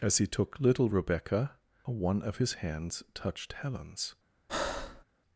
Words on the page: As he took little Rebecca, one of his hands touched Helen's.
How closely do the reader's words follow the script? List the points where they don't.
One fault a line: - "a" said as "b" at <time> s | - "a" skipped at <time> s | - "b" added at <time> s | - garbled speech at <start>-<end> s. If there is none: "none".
none